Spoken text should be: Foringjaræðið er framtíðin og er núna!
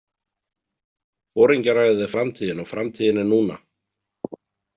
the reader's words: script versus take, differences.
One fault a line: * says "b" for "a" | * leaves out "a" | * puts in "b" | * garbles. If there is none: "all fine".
* puts in "framtíðin"